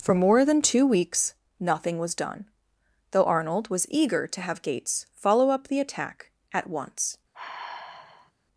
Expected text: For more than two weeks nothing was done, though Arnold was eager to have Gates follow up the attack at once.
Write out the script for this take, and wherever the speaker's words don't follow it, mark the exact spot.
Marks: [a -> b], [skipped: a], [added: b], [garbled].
For more than two weeks nothing was done, though Arnold was eager to have Gates follow up the attack at once.